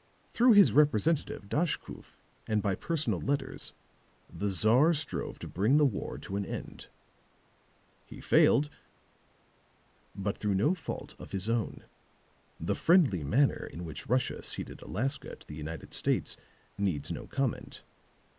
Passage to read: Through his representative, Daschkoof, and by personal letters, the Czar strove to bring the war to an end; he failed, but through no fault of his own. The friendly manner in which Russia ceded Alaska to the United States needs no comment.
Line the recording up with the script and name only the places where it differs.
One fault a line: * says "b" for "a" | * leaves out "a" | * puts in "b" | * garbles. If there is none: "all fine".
all fine